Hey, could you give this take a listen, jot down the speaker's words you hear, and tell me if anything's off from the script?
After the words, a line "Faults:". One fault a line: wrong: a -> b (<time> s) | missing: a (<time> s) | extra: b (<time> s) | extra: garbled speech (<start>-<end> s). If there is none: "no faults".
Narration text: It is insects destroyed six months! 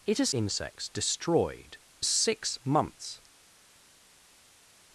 It is insects destroyed six months!
Faults:
no faults